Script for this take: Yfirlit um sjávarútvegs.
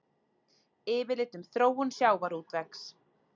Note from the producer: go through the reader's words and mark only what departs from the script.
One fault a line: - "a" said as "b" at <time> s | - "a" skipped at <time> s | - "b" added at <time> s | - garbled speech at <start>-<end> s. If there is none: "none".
- "þróun" added at 1.6 s